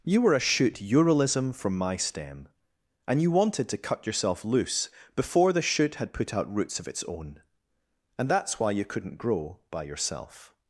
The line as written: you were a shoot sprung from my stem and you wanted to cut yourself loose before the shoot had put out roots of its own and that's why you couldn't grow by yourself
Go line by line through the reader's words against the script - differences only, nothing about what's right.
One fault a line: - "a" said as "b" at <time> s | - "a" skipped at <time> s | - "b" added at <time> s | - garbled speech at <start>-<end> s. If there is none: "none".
- "sprung" said as "uralism" at 0.8 s